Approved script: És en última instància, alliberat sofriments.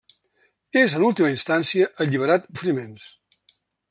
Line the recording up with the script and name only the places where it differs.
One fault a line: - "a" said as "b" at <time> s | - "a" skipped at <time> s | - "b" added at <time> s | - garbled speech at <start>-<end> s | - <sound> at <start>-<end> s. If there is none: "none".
none